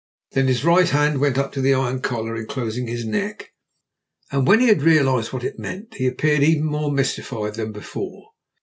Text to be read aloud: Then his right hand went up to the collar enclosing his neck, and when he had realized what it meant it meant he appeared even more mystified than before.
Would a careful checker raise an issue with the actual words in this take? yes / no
yes